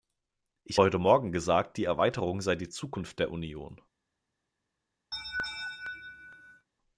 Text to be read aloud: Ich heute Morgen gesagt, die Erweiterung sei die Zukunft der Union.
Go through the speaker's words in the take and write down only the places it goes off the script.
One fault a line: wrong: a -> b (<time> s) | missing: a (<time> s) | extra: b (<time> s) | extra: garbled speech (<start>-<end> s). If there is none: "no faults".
no faults